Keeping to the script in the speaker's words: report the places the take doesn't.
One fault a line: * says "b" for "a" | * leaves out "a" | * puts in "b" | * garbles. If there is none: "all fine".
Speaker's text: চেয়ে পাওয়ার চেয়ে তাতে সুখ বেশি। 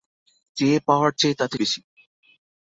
* leaves out "সুখ"